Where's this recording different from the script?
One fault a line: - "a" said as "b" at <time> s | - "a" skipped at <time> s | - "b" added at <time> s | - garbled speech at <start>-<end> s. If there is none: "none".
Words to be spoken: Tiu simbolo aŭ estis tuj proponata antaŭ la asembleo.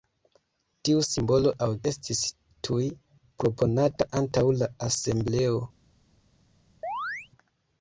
none